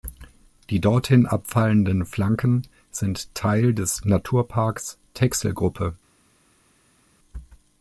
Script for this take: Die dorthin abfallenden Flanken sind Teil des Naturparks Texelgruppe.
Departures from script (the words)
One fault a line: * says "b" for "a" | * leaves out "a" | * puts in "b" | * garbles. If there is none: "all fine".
all fine